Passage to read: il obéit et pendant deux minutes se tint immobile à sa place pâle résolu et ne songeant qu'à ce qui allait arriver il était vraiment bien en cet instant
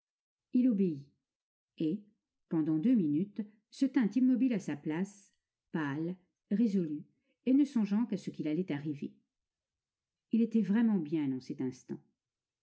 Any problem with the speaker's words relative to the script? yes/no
no